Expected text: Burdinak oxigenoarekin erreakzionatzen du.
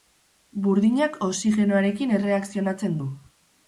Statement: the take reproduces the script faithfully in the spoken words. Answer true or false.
true